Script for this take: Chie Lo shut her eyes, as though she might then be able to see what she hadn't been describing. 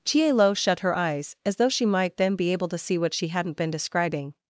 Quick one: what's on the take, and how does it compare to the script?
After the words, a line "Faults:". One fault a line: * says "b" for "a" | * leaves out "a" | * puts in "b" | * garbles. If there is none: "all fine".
Chie Lo shut her eyes, as though she might then be able to see what she hadn't been describing.
Faults:
all fine